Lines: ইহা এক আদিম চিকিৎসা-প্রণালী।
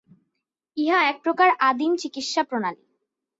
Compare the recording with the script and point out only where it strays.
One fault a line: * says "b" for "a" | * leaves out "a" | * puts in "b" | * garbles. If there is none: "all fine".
* puts in "প্রকার"